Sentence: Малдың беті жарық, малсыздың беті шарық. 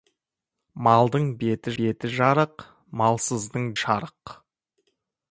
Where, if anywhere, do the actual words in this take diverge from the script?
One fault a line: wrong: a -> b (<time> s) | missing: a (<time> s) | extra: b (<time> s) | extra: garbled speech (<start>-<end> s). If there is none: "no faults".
extra: беті (1.8 s)
missing: беті (3.7 s)